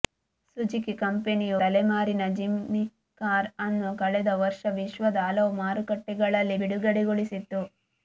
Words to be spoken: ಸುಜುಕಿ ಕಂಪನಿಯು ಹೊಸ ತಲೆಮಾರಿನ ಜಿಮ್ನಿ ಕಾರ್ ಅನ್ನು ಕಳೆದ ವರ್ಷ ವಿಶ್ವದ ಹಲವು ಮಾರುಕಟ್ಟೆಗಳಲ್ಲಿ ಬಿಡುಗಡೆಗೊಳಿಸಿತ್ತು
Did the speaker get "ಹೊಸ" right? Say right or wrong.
wrong